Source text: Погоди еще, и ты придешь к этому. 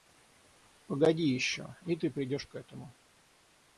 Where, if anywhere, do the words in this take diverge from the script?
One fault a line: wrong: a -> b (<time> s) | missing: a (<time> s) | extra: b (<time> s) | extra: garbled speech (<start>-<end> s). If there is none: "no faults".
no faults